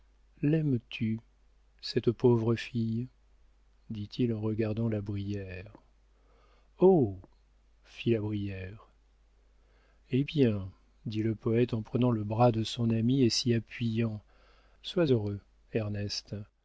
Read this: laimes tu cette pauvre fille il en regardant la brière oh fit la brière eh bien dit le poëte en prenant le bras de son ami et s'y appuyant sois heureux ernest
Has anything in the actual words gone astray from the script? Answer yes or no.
yes